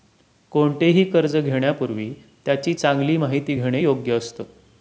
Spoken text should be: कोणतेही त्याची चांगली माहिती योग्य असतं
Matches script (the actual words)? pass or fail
fail